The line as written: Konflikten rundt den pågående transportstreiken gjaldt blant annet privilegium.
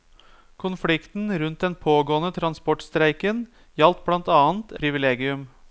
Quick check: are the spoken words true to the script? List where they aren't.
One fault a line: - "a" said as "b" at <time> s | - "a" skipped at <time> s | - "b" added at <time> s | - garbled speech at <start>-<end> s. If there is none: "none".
none